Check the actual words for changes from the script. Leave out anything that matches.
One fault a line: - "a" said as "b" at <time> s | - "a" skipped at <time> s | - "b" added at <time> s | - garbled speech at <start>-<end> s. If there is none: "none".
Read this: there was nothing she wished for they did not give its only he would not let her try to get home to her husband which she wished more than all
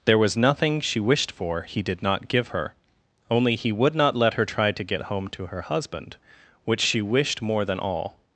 - "they" said as "he" at 1.6 s
- "its" said as "her" at 2.5 s